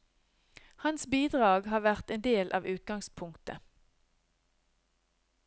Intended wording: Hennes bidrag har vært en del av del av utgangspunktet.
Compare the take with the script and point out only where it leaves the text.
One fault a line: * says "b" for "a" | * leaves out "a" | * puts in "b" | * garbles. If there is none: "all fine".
* says "Hans" for "Hennes"
* leaves out "del av"